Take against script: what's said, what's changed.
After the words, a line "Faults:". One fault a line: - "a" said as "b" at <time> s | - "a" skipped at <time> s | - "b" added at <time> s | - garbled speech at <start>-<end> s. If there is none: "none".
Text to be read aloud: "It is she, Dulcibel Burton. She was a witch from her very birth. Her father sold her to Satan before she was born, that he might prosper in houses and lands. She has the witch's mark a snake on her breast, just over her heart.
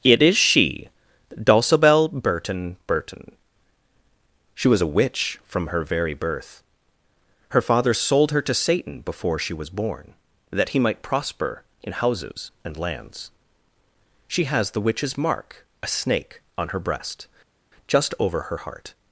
"It is she, Dulcibel Burton Burton. She was a witch from her very birth. Her father sold her to Satan before she was born, that he might prosper in houses and lands. She has the witch's mark a snake on her breast, just over her heart.
Faults:
- "Burton" added at 2.9 s